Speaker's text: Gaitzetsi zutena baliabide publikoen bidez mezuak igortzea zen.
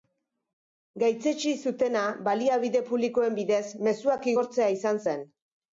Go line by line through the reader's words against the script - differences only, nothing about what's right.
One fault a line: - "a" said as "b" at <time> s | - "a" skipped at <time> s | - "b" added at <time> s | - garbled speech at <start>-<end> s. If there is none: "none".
- "izan" added at 4.8 s